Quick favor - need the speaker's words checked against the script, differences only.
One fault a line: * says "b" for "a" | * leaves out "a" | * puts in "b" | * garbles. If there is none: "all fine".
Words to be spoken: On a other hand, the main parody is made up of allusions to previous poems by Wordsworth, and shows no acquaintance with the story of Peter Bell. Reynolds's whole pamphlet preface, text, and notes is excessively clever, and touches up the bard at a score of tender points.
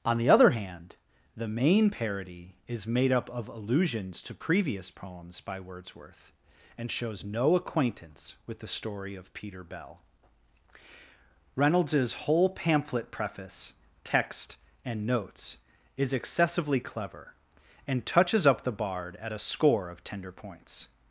* says "the" for "a"